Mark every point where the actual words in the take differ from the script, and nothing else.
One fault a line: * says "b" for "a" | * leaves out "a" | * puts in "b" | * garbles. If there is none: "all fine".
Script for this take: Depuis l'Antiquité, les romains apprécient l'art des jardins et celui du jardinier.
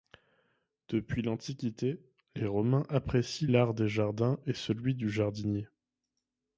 all fine